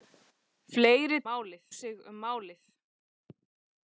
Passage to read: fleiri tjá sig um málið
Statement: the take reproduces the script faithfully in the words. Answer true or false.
false